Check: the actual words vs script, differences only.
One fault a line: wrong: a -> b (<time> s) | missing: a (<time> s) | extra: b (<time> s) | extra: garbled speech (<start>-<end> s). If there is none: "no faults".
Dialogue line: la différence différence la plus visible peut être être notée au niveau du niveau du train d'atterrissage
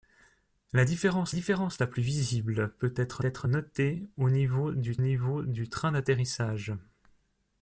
no faults